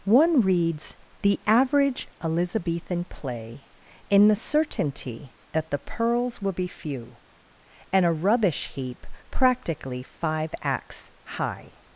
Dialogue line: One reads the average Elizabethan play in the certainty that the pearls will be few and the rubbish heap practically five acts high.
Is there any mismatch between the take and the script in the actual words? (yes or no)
yes